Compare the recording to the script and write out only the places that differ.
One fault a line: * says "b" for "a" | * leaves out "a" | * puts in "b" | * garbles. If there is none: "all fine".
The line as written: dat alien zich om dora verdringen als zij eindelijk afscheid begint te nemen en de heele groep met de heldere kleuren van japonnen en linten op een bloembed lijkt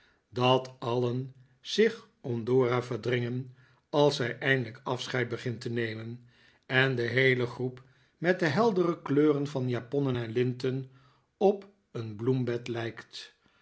all fine